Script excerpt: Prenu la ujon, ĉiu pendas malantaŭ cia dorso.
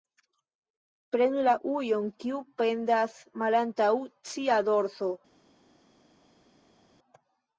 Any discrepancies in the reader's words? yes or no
yes